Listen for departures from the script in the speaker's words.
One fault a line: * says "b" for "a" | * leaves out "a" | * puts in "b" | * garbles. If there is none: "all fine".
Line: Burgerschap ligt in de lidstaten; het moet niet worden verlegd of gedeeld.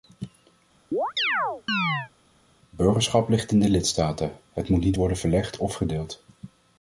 all fine